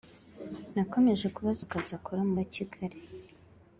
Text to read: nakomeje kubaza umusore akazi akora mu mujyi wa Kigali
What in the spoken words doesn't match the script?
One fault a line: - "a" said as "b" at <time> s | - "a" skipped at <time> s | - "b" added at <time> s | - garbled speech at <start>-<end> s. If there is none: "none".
- "umusore" skipped at 1.6 s
- "mujyi" skipped at 2.3 s